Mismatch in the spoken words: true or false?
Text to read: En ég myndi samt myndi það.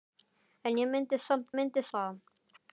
false